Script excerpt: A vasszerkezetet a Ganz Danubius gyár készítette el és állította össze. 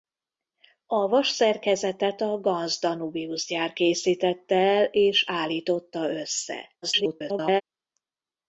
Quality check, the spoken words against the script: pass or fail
fail